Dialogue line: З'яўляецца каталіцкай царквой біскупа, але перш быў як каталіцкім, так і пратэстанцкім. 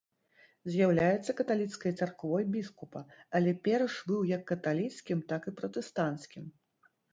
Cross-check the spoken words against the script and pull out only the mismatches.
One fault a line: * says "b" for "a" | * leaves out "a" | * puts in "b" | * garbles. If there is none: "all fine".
all fine